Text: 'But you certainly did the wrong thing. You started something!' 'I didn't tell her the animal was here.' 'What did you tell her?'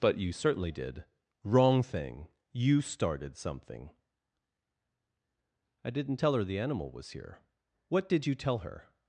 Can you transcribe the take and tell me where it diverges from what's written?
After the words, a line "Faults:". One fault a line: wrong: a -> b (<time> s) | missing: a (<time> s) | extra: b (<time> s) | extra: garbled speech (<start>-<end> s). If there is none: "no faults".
'But you certainly did wrong thing. You started something!' 'I didn't tell her the animal was here.' 'What did you tell her?'
Faults:
missing: the (1.0 s)